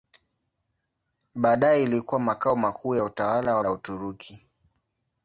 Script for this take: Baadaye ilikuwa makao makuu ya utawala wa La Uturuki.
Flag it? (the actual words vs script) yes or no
no